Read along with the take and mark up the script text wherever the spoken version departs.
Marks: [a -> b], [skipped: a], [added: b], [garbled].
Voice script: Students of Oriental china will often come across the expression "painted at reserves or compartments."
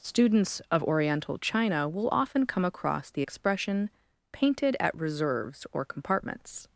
Students of Oriental china will often come across the expression "painted at reserves or compartments."